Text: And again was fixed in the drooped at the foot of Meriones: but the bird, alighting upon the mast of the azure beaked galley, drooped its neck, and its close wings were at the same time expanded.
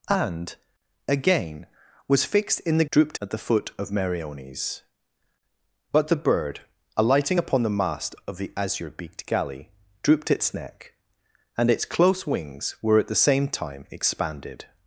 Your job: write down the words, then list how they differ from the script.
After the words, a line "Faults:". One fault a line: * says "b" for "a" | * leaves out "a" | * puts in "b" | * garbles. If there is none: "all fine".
And again was fixed in the drooped at the foot of Meriones: but the bird, alighting upon the mast of the azure beaked galley, drooped its neck, and its close wings were at the same time expanded.
Faults:
all fine